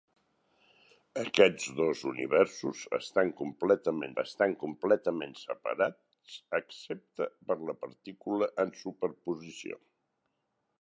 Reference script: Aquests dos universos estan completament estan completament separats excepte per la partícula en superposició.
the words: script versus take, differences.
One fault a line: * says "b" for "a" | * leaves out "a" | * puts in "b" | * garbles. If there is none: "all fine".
all fine